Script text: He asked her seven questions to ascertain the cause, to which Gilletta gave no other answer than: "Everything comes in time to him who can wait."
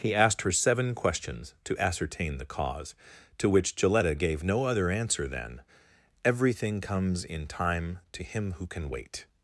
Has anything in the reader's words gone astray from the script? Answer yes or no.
no